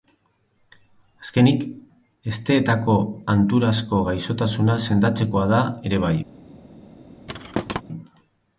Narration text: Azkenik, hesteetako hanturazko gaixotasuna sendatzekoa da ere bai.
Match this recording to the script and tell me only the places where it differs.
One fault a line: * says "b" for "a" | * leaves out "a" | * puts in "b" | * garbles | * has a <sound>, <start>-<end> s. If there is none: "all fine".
* has a thud, 7.3-7.8 s